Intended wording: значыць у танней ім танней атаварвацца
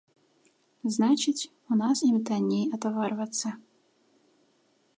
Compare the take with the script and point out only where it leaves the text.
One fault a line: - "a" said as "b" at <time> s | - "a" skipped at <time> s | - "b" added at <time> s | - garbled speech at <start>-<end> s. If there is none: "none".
- "танней" said as "нас" at 1.8 s